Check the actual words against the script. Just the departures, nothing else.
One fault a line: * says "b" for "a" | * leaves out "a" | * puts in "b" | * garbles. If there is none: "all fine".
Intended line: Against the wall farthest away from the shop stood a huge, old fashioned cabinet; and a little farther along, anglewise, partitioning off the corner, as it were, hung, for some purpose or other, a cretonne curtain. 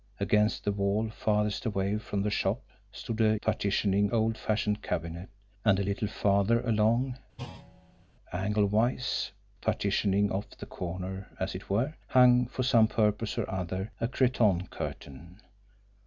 * says "partitioning" for "huge"